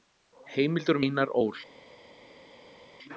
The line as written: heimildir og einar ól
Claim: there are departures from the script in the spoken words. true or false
false